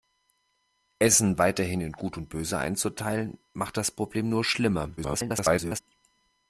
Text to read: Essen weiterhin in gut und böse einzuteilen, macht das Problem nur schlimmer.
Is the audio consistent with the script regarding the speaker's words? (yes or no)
no